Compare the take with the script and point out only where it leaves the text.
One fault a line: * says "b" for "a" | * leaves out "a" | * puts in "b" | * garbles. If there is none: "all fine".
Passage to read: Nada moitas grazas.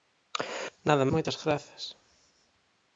all fine